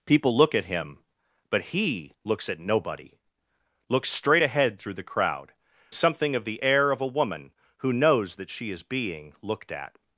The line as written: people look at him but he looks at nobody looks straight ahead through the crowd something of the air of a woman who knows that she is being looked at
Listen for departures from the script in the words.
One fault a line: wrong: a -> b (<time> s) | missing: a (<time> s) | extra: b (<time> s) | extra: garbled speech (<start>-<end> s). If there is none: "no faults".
no faults